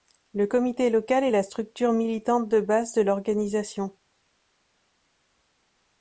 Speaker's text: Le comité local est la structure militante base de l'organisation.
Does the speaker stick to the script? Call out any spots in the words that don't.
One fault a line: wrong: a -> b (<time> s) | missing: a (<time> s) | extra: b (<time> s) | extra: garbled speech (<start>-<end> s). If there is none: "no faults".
extra: de (2.5 s)